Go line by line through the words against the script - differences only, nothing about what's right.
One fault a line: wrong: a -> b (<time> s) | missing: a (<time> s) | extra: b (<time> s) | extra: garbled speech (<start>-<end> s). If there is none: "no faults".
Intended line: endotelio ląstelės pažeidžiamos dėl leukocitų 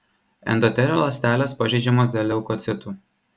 no faults